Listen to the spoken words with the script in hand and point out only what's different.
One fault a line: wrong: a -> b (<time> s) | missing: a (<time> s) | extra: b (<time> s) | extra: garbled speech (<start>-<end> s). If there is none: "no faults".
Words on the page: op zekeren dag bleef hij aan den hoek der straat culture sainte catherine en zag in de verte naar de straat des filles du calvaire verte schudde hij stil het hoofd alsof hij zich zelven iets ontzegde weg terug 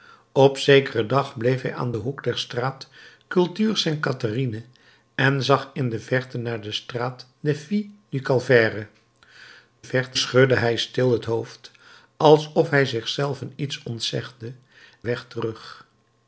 no faults